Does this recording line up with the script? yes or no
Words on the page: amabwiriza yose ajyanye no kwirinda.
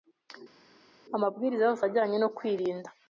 yes